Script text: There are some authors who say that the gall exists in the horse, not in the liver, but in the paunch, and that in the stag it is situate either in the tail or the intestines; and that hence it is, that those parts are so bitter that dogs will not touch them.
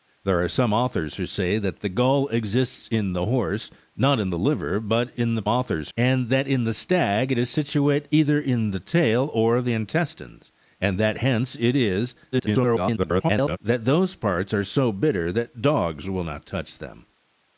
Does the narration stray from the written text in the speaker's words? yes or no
yes